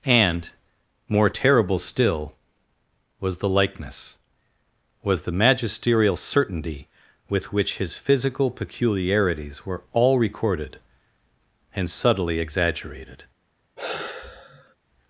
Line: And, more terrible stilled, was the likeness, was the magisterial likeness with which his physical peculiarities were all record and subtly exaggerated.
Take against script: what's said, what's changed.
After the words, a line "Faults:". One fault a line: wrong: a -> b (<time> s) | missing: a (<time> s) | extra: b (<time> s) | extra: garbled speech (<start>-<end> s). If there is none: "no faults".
And, more terrible still, was the likeness, was the magisterial certainty with which his physical peculiarities were all recorded and subtly exaggerated.
Faults:
wrong: stilled -> still (1.8 s)
wrong: likeness -> certainty (6.1 s)
wrong: record -> recorded (10.2 s)